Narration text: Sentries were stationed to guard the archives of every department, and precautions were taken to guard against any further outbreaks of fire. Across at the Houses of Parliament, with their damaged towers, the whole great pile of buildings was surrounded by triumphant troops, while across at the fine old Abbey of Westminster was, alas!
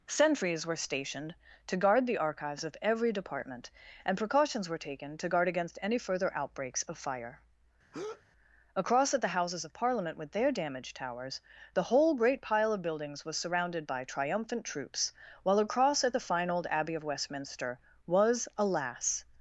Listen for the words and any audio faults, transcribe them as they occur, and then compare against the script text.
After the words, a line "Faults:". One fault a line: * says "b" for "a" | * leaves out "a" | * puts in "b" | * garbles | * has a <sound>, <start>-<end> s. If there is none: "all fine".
Sentries were stationed to guard the archives of every department, and precautions were taken to guard against any further outbreaks of fire. Across at the Houses of Parliament, with their damaged towers, the whole great pile of buildings was surrounded by triumphant troops, while across at the fine old Abbey of Westminster was, alas!
Faults:
* has a breath, 7.9-8.2 s